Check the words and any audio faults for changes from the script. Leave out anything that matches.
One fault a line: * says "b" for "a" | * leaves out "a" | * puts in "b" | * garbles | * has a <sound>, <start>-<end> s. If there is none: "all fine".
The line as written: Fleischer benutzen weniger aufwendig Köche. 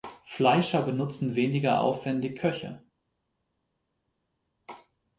all fine